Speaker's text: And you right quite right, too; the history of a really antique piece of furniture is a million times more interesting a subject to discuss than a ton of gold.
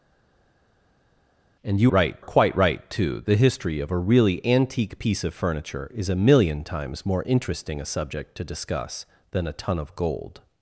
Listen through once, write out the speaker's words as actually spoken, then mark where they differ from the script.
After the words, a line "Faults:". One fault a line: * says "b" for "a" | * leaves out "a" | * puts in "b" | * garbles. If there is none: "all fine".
And you right quite right, too; the history of a really antique piece of furniture is a million times more interesting a subject to discuss than a ton of gold.
Faults:
all fine